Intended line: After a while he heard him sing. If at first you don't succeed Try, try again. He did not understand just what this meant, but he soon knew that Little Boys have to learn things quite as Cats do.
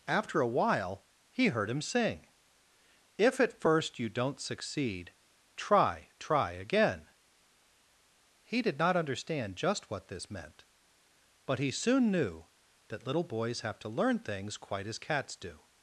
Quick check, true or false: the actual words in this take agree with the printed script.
true